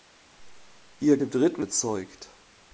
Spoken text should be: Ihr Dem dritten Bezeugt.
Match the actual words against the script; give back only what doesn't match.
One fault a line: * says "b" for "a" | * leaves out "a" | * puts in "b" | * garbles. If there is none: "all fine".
all fine